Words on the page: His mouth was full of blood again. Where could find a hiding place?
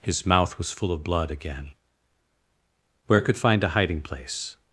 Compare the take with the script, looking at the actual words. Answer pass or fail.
pass